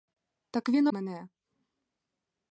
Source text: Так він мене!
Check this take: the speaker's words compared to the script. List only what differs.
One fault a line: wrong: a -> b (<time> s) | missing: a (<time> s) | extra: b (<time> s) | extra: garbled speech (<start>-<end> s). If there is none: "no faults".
no faults